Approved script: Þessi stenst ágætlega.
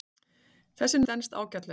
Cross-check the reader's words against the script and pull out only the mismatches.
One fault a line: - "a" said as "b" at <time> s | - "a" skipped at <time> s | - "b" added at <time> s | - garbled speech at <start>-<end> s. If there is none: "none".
none